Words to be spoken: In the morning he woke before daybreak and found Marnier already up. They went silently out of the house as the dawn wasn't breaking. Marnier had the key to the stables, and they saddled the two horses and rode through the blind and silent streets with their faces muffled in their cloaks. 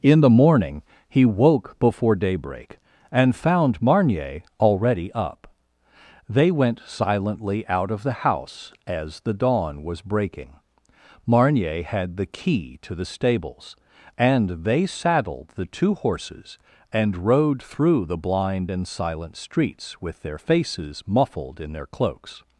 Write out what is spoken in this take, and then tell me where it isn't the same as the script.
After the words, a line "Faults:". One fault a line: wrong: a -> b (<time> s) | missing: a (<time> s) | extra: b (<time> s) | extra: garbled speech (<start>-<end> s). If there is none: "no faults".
In the morning he woke before daybreak and found Marnier already up. They went silently out of the house as the dawn was breaking. Marnier had the key to the stables, and they saddled the two horses and rode through the blind and silent streets with their faces muffled in their cloaks.
Faults:
wrong: wasn't -> was (9.8 s)